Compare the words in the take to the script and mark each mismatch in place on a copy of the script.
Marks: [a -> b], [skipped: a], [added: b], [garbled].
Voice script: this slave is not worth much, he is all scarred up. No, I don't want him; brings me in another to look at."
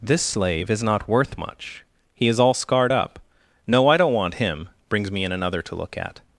this slave is not worth much, he is all scarred up. No, I don't want him; brings me in another to look at."